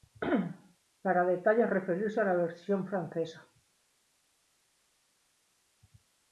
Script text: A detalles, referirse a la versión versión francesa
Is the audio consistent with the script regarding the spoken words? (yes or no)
no